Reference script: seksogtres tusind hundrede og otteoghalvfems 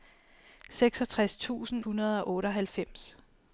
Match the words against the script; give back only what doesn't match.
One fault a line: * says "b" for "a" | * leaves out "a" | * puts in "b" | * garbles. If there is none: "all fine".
all fine